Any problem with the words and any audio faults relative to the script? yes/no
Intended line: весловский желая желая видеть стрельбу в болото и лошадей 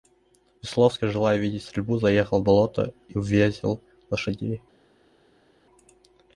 yes